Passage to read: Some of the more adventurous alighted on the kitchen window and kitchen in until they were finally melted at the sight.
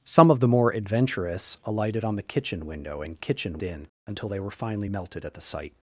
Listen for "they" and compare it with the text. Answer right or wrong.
right